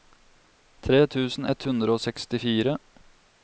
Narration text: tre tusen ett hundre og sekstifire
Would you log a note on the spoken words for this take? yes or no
no